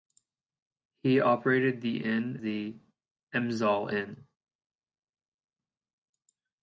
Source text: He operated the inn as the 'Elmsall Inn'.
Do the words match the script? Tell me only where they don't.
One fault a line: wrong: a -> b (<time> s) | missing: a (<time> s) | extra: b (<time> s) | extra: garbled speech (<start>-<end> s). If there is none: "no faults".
missing: as (2.4 s)